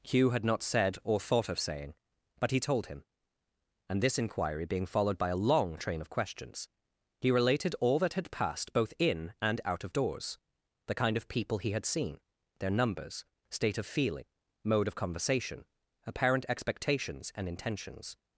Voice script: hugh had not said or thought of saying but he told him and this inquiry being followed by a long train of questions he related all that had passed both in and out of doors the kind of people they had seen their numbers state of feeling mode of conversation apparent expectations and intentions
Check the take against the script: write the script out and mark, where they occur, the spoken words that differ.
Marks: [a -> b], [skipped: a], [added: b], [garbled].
hugh had not said or thought of saying but he told him and this inquiry being followed by a long train of questions he related all that had passed both in and out of doors the kind of people [they -> he] had seen their numbers state of feeling mode of conversation apparent expectations and intentions